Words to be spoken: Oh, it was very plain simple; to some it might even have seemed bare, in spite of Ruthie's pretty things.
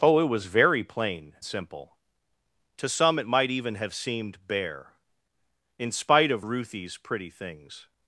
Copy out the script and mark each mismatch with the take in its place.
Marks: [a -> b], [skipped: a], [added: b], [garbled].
Oh, it was very plain simple; to some it might even have seemed bare, in spite of Ruthie's pretty things.